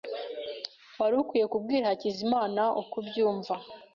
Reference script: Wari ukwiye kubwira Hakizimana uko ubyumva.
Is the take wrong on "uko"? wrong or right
right